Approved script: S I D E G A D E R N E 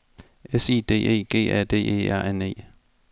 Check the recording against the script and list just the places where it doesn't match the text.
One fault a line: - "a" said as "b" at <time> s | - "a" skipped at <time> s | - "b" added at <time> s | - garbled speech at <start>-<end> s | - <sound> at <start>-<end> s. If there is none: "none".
none